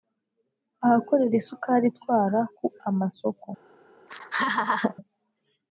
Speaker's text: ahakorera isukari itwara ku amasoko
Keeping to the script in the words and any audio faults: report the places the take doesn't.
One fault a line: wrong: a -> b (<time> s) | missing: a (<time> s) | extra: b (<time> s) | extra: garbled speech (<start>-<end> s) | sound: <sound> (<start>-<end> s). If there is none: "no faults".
sound: laugh (4.1-5.0 s)